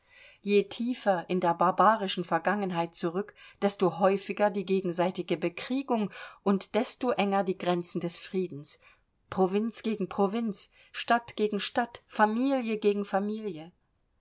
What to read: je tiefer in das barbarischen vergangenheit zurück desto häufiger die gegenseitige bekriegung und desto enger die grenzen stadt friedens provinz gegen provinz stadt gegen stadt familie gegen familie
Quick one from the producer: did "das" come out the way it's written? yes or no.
no